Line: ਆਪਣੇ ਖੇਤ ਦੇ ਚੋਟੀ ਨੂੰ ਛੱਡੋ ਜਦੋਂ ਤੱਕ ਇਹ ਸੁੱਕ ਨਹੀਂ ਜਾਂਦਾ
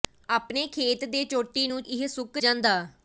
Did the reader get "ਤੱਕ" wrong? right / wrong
wrong